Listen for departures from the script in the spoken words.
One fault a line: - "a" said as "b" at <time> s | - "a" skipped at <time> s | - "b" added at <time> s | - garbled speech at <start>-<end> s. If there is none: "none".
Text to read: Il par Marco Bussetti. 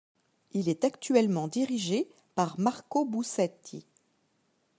- "est actuellement dirigé" added at 0.7 s